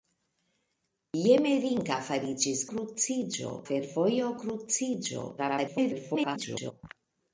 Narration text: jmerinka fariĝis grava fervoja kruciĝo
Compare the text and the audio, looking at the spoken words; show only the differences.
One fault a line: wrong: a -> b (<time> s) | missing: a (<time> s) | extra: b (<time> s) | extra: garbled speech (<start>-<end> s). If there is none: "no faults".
wrong: grava -> kruciĝo (2.7 s)
extra: garbled speech (5.4-6.7 s)